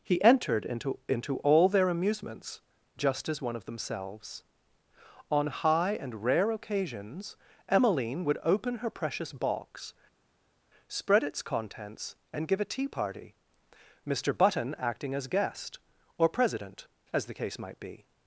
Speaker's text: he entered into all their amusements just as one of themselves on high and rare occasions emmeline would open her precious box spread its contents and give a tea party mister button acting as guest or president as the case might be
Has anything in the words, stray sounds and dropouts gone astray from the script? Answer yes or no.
yes